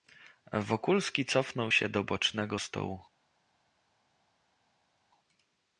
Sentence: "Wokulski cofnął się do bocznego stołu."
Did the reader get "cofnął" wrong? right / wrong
right